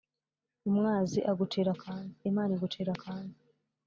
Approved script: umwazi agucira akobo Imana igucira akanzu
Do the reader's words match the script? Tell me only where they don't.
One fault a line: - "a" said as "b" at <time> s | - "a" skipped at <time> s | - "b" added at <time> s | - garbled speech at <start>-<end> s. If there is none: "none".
- "akobo" said as "akanzu" at 1.7 s